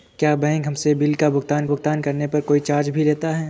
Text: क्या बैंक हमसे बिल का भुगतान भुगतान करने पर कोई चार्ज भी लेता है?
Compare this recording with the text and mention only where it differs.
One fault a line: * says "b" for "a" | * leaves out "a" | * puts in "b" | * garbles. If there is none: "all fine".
all fine